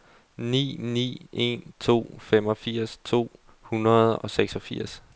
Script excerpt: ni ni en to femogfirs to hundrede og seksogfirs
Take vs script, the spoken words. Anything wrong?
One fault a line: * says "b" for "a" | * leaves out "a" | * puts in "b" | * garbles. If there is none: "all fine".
all fine